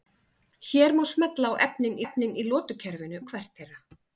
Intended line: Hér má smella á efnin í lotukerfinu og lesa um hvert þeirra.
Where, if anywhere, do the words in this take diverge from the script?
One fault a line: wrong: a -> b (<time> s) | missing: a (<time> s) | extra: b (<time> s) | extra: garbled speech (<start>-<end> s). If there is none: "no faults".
extra: efnin (2.0 s)
missing: og lesa (3.2 s)